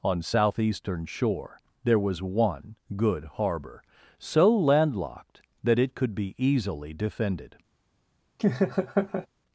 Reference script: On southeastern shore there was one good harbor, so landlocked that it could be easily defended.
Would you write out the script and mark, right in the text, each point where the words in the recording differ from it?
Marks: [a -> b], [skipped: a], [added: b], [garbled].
On southeastern shore there was one good harbor, so landlocked that it could be easily defended.